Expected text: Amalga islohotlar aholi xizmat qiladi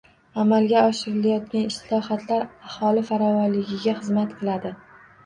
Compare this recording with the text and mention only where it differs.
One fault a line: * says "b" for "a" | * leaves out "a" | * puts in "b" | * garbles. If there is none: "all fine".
* puts in "oshirilayotgan"
* puts in "farovonligiga"